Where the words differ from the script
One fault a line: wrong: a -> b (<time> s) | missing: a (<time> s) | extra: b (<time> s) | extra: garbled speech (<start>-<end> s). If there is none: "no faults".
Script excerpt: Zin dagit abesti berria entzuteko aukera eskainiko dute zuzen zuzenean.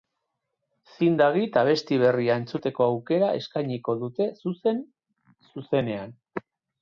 no faults